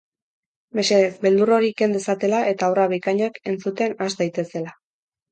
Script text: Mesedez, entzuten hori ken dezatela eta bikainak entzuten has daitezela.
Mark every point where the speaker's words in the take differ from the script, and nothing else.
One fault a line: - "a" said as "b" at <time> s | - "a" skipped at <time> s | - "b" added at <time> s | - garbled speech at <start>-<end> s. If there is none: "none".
- "entzuten" said as "beldur" at 1.2 s
- "obra" added at 2.7 s